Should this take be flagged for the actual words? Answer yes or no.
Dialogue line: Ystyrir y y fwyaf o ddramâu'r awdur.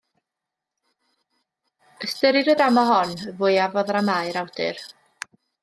yes